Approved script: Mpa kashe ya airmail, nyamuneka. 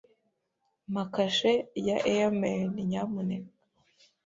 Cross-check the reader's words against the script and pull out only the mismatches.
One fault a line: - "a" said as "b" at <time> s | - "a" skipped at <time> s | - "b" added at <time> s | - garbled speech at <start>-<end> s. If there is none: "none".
none